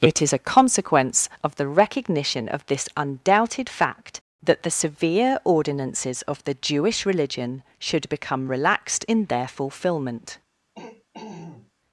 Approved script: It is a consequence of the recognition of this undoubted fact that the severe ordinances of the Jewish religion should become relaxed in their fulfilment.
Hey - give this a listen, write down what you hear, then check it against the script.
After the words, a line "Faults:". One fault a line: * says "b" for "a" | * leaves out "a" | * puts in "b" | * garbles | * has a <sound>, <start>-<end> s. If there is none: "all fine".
It is a consequence of the recognition of this undoubted fact that the severe ordinances of the Jewish religion should become relaxed in their fulfilment.
Faults:
* has a throat clearing, 10.8-11.7 s